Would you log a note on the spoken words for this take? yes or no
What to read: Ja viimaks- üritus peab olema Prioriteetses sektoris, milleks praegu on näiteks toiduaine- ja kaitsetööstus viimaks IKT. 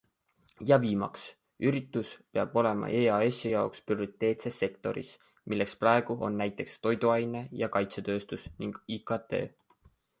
yes